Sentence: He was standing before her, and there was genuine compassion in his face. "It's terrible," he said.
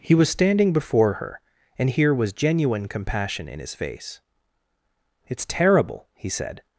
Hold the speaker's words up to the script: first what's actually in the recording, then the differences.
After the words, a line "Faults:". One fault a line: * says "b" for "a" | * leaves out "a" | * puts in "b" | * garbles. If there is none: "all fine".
He was standing before her, and here was genuine compassion in his face. "It's terrible," he said.
Faults:
* says "here" for "there"